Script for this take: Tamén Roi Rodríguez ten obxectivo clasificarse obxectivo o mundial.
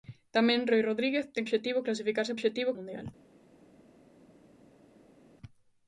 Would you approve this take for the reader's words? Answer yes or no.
yes